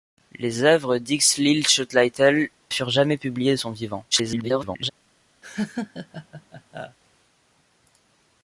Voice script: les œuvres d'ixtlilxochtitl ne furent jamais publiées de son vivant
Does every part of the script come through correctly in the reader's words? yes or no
no